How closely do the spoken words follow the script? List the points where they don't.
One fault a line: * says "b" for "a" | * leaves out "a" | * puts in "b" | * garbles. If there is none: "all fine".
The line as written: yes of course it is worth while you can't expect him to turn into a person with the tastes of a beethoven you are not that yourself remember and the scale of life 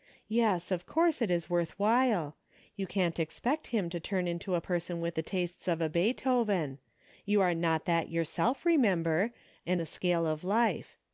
all fine